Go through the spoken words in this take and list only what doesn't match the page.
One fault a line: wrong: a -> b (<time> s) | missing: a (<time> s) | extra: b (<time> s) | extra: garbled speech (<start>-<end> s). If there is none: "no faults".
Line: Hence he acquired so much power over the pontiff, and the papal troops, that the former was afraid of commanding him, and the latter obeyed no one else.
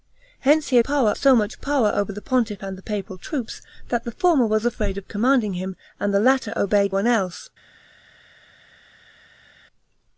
wrong: acquired -> power (0.8 s)
missing: no (6.9 s)